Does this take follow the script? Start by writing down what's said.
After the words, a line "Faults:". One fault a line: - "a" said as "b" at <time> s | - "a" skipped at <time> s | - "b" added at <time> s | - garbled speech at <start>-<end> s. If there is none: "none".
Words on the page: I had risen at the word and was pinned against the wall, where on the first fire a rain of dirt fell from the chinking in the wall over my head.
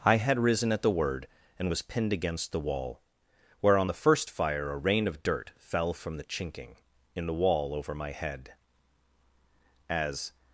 I had risen at the word and was pinned against the wall, where on the first fire a rain of dirt fell from the chinking in the wall over my head. As
Faults:
- "As" added at 9.9 s